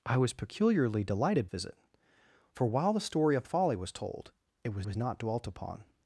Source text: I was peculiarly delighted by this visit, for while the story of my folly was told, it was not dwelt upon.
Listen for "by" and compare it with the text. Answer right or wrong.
wrong